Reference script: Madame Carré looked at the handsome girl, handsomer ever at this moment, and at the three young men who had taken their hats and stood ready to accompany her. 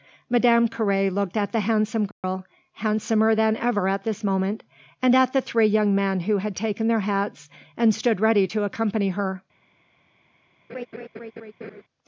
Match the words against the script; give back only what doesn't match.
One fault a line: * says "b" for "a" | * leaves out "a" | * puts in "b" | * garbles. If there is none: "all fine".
* puts in "than"